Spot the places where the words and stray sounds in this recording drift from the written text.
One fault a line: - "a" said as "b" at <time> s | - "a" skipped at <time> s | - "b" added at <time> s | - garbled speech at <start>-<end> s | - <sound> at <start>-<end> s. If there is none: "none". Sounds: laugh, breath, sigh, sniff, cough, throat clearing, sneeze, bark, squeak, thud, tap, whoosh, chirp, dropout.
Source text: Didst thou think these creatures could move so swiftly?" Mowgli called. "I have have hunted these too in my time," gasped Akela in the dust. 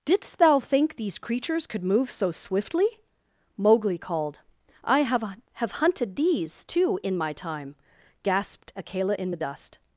none